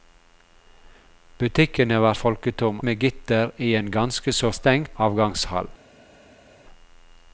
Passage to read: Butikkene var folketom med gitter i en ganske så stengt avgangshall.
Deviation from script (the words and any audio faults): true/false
false